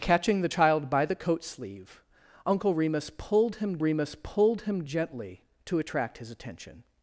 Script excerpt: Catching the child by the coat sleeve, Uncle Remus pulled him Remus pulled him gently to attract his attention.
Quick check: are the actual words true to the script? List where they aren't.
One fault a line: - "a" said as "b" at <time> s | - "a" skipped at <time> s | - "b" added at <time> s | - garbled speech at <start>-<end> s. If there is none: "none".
none